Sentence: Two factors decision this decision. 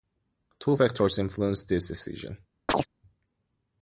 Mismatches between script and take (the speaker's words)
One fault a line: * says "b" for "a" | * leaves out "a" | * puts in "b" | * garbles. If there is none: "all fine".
* says "influenced" for "decision"